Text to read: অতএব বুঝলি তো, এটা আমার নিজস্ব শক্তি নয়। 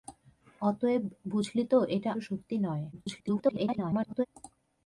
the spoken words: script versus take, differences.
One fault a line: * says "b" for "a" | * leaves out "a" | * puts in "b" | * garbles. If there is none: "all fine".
* leaves out "আমার নিজস্ব"
* garbles